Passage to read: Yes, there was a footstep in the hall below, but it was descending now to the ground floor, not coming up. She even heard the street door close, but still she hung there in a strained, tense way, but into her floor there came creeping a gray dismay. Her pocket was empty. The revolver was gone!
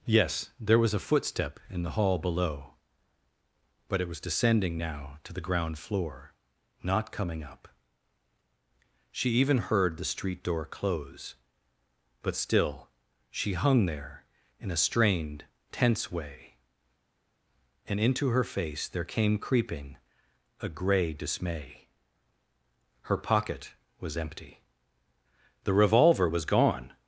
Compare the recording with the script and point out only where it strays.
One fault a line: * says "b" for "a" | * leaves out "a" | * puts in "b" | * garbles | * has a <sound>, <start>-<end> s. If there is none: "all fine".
* says "and" for "but"
* says "face" for "floor"